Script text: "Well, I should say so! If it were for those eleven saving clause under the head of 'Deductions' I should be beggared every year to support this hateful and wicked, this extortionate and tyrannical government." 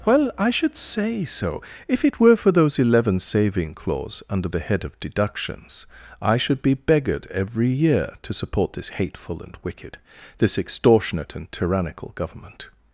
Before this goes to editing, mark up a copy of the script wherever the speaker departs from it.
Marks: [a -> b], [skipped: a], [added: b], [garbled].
"Well, I should say so! If it were for those eleven saving clause under the head of 'Deductions' I should be beggared every year to support this hateful and wicked, this extortionate and tyrannical government."